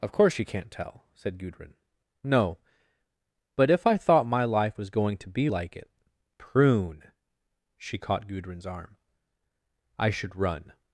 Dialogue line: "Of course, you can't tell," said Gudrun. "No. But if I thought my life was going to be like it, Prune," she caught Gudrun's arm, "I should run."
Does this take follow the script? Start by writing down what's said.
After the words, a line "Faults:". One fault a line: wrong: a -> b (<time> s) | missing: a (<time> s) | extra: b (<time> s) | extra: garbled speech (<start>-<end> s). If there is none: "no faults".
"Of course, you can't tell," said Gudrun. "No. But if I thought my life was going to be like it, Prune," she caught Gudrun's arm, "I should run."
Faults:
no faults